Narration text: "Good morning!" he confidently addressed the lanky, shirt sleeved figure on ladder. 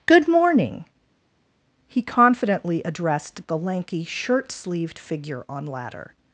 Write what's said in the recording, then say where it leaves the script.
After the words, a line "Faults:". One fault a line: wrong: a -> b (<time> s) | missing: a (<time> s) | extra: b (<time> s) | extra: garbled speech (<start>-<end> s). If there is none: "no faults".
"Good morning!" he confidently addressed the lanky, shirt sleeved figure on ladder.
Faults:
no faults